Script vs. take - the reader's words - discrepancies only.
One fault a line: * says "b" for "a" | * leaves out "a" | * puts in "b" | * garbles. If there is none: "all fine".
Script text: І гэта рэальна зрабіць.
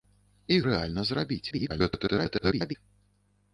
* leaves out "гэта"
* garbles